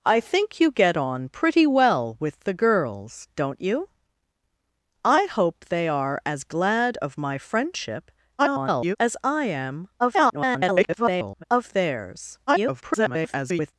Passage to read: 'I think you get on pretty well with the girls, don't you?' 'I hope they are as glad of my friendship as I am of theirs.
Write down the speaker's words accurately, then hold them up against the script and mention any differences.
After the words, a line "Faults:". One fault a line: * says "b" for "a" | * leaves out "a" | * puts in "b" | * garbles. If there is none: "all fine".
'I think you get on pretty well with the girls, don't you?' 'I hope they are as glad of my friendship [garbled] as I am [garbled] of theirs. [garbled]
Faults:
* garbles
* garbles
* garbles